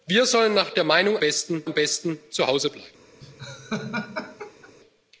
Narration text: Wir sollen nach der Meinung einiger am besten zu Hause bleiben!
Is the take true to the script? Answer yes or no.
no